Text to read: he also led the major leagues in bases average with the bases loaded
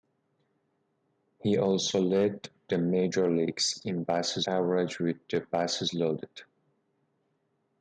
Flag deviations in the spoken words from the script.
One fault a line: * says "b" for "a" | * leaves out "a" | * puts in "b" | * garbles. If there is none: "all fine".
all fine